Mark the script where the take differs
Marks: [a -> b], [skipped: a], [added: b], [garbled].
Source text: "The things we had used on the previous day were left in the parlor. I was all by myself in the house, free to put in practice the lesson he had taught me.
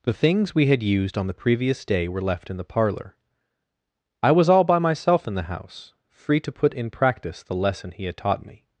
"The things we had used on the previous day were left in the parlor. I was all by myself in the house, free to put in practice the lesson he had taught me.